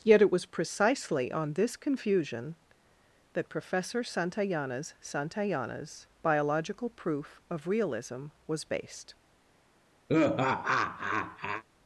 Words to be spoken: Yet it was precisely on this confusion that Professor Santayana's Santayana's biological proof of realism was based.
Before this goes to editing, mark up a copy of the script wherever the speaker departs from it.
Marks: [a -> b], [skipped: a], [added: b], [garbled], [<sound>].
Yet it was precisely on this confusion that Professor Santayana's Santayana's biological proof of realism was based. [laugh]